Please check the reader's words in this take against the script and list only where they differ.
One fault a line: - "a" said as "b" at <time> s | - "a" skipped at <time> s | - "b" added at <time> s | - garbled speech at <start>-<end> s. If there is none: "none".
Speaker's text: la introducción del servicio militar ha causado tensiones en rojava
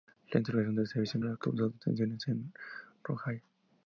- "militar" skipped at 1.2 s